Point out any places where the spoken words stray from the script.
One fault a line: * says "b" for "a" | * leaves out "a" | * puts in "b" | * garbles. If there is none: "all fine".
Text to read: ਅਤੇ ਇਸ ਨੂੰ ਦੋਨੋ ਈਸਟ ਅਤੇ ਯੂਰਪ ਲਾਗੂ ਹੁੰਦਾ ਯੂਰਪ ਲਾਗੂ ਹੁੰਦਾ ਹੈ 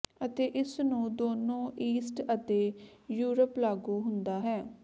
* leaves out "ਯੂਰਪ ਲਾਗੂ ਹੁੰਦਾ"